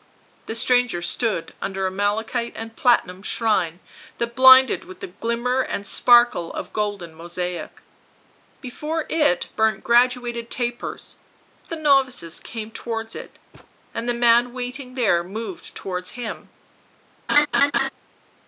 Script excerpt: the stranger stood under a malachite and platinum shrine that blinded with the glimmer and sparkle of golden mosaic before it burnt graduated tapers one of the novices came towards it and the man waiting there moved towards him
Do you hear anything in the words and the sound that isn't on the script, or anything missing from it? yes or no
yes